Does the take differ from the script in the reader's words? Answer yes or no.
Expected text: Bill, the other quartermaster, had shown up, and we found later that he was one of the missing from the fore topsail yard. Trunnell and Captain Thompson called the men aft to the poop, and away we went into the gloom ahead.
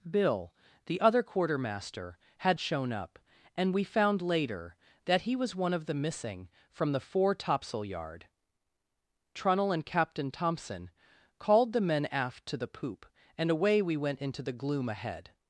no